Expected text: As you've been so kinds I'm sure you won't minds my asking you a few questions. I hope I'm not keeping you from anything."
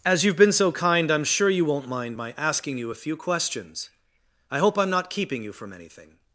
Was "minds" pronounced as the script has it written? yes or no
no